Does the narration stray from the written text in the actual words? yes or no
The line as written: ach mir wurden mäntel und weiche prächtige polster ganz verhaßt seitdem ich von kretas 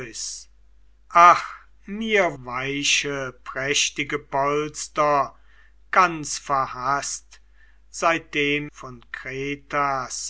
yes